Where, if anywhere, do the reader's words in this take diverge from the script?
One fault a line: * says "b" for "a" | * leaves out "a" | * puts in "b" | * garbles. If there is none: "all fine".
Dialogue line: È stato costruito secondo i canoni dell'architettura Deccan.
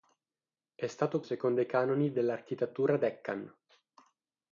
* leaves out "costruito"